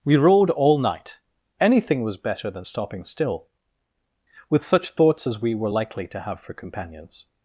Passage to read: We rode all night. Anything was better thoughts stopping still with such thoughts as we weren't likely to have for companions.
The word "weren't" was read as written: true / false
false